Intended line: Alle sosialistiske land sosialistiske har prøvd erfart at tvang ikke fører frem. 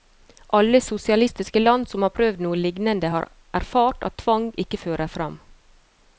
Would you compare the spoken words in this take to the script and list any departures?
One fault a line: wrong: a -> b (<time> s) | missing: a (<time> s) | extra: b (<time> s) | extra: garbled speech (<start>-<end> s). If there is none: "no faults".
wrong: sosialistiske -> som (1.9 s)
extra: noe lignende har (2.4 s)